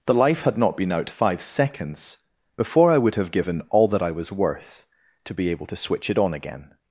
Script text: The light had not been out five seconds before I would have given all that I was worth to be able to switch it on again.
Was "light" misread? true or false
true